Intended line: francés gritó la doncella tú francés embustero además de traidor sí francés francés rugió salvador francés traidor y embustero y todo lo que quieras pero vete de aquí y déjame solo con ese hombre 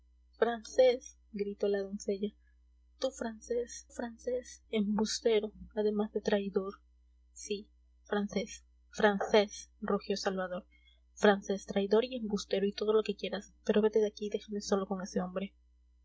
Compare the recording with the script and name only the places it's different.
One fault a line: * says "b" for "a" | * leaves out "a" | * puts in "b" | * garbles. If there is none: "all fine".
* puts in "francés"